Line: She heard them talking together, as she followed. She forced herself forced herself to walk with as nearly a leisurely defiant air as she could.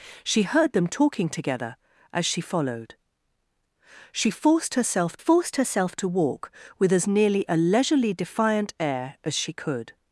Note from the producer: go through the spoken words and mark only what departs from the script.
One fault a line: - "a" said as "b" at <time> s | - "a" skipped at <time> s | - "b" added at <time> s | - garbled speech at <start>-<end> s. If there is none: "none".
none